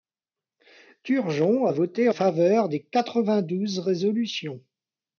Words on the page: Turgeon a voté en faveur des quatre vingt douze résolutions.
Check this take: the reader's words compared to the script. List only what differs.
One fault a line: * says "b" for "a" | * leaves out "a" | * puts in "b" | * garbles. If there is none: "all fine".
* leaves out "en"